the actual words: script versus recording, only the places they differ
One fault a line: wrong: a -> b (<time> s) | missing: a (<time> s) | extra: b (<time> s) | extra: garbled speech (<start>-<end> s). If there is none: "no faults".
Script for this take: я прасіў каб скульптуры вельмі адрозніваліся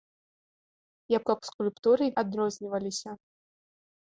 missing: прасіў (1.2 s)
missing: вельмі (2.0 s)